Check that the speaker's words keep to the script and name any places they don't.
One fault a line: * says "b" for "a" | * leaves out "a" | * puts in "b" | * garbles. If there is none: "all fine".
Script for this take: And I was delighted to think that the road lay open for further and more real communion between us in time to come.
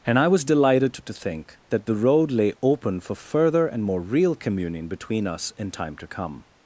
all fine